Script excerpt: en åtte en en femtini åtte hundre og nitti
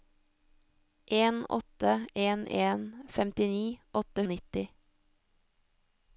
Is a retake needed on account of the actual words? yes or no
yes